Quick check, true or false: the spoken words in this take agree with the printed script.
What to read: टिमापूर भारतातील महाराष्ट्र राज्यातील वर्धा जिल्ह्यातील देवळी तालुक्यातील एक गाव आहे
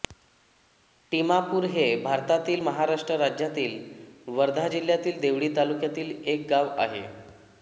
false